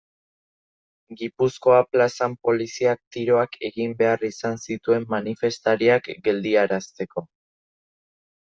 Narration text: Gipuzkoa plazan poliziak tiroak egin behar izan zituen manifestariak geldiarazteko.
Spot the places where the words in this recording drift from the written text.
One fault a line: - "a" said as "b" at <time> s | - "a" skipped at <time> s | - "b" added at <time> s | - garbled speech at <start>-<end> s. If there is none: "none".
none